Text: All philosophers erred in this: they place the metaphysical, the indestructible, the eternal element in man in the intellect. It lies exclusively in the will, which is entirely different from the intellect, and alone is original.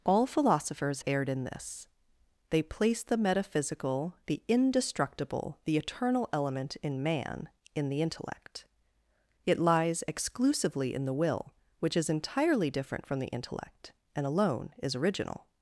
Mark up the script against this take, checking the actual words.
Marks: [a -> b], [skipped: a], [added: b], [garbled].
All philosophers erred in this: they place the metaphysical, the indestructible, the eternal element in man in the intellect. It lies exclusively in the will, which is entirely different from the intellect, and alone is original.